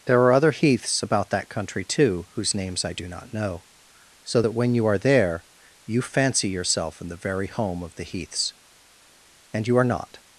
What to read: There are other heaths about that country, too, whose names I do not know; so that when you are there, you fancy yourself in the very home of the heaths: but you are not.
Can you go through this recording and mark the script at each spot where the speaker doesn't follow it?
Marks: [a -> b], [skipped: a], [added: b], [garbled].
There are other heaths about that country, too, whose names I do not know; so that when you are there, you fancy yourself in the very home of the heaths: [but -> and] you are not.